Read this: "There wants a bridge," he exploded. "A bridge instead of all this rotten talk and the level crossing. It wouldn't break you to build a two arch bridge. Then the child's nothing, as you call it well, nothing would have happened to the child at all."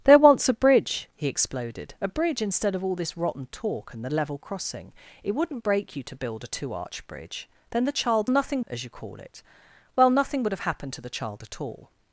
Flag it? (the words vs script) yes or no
no